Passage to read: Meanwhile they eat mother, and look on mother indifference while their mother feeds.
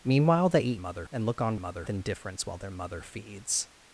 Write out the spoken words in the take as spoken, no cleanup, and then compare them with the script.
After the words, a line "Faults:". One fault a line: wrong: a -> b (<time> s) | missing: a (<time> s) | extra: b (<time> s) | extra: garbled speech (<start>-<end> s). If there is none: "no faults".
Meanwhile they eat mother, and look on mother indifference while their mother feeds.
Faults:
no faults